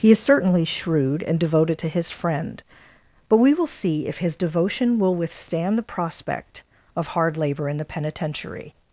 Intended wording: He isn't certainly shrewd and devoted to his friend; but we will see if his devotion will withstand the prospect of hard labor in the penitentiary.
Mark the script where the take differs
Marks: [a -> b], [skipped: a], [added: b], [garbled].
He [isn't -> is] certainly shrewd and devoted to his friend; but we will see if his devotion will withstand the prospect of hard labor in the penitentiary.